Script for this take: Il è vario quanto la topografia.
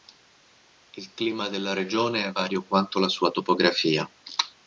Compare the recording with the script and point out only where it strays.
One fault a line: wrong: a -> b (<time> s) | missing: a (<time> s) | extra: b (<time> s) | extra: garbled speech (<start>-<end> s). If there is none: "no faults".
extra: clima della regione (1.1 s)
extra: sua (3.1 s)